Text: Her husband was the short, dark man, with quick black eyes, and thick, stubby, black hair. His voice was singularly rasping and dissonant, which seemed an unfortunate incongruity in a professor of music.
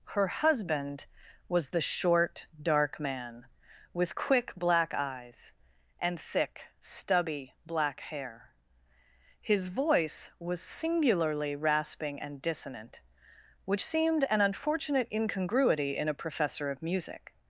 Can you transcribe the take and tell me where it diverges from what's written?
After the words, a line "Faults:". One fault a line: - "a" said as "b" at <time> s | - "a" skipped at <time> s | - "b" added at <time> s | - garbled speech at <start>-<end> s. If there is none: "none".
Her husband was the short, dark man, with quick black eyes, and thick, stubby, black hair. His voice was singularly rasping and dissonant, which seemed an unfortunate incongruity in a professor of music.
Faults:
none